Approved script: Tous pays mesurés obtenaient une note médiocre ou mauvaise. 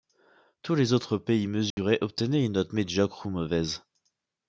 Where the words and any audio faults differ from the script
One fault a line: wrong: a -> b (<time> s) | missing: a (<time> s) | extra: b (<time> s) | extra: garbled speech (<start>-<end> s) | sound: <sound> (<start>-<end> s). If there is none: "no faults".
extra: les autres (0.7 s)
sound: dropout (1.7-1.8 s)